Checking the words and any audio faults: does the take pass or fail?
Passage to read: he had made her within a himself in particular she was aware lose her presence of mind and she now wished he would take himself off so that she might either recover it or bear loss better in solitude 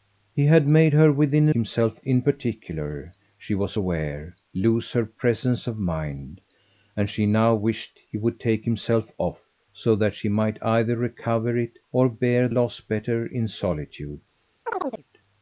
fail